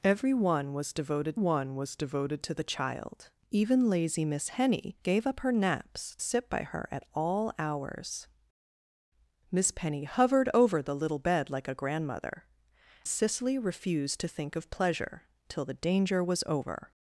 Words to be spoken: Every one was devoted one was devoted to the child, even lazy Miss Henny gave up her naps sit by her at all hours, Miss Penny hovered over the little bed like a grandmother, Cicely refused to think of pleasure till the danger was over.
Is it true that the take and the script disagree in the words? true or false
false